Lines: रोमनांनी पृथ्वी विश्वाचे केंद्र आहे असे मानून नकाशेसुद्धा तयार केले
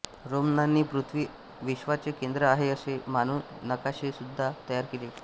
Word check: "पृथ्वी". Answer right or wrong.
right